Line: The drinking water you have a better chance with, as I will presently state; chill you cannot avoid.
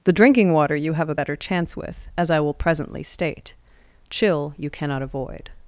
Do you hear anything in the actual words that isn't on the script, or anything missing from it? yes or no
no